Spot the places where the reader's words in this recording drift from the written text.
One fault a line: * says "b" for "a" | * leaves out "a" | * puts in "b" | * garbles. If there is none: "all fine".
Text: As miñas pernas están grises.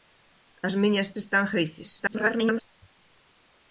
* leaves out "pernas"
* garbles